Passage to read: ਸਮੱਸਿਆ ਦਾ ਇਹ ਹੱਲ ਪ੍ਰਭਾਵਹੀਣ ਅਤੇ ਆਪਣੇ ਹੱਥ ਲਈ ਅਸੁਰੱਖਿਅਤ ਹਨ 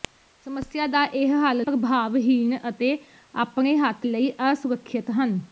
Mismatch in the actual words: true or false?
false